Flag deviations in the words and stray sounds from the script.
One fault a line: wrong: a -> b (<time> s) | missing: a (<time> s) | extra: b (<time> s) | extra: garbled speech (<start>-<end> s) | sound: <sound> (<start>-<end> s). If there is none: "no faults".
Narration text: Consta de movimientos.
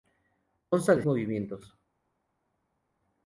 no faults